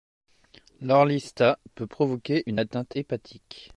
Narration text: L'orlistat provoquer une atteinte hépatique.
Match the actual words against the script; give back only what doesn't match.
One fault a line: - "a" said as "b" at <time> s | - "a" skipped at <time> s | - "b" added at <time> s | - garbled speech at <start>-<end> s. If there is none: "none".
- "peut" added at 1.8 s